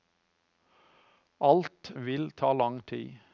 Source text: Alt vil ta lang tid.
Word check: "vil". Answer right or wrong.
right